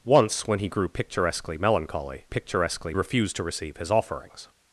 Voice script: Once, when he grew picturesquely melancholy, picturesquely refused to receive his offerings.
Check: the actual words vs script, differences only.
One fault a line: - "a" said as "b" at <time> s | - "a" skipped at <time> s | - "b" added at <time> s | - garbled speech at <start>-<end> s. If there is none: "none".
none